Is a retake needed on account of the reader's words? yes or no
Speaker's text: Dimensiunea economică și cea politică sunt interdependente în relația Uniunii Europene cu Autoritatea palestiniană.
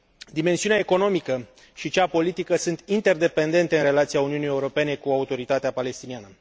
no